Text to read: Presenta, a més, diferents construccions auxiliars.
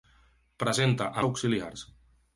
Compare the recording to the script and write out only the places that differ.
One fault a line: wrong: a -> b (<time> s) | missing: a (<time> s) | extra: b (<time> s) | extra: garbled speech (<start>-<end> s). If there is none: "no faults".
missing: més diferents construccions (1.2 s)